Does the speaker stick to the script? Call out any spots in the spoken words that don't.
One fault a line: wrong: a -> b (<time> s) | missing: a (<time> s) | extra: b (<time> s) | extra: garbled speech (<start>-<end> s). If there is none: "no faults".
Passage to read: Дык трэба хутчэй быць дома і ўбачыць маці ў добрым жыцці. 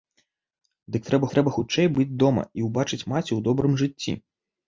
extra: трэба (1.3 s)